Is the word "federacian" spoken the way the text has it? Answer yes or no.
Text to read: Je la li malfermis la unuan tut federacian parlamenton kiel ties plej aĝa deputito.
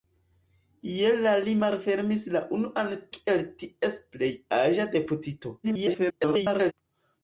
no